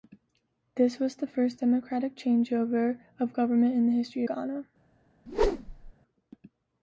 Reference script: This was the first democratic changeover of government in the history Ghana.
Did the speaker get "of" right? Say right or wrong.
right